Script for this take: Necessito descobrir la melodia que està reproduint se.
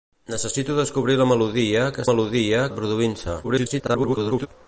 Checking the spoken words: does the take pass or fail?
fail